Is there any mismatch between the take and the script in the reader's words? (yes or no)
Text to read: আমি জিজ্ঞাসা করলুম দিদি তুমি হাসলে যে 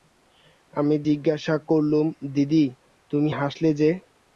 no